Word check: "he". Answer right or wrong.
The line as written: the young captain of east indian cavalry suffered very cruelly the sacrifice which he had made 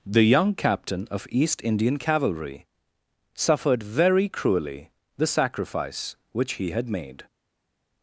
right